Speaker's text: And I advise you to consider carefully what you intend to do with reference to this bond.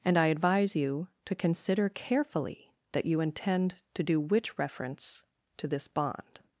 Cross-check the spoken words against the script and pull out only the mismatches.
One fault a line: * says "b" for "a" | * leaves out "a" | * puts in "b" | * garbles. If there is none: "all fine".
* says "that" for "what"
* says "which" for "with"